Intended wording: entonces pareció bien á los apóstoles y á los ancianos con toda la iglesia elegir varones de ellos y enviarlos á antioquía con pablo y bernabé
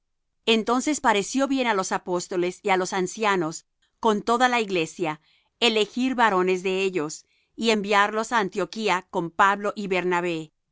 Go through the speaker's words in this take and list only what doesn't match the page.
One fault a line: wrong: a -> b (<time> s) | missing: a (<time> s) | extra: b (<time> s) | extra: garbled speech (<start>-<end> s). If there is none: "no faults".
no faults